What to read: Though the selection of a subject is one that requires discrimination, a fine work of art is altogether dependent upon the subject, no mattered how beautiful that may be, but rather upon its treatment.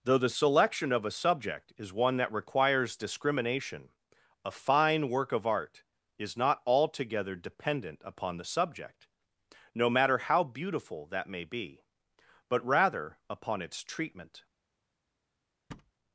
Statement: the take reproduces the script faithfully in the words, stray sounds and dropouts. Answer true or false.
false